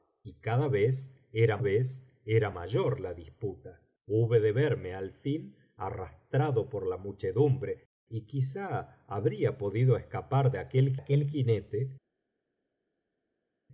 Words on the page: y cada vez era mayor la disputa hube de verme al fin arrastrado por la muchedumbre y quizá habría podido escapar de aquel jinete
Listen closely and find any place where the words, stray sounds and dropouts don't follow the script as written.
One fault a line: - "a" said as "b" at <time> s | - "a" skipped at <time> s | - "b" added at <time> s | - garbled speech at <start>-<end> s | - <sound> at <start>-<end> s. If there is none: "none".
- "vez era" added at 1.6 s
- "aquel" added at 11.0 s